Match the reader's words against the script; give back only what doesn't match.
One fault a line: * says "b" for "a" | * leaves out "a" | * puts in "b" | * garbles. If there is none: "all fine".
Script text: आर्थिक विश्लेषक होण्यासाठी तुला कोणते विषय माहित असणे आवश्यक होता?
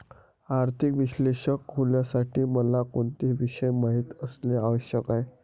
* says "मला" for "तुला"
* says "आहे" for "होता"